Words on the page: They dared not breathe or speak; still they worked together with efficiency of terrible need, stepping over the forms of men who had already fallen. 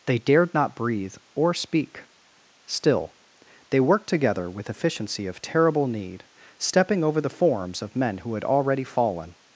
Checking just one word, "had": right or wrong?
right